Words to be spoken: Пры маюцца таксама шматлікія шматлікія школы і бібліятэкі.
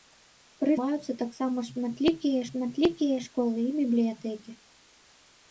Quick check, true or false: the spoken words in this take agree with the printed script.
true